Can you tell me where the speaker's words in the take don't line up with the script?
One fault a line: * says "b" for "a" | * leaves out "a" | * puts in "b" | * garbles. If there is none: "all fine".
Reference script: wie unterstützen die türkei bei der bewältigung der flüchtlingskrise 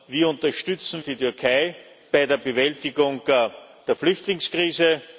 all fine